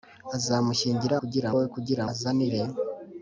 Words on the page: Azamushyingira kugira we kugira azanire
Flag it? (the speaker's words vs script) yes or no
no